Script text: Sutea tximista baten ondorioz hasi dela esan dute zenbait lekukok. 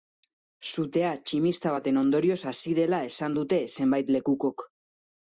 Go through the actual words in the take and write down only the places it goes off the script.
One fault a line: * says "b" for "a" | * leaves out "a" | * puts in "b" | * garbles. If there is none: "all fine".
all fine